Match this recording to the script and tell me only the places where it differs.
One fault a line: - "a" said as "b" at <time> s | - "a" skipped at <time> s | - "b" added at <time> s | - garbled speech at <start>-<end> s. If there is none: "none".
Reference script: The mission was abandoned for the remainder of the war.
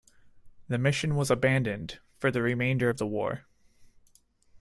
none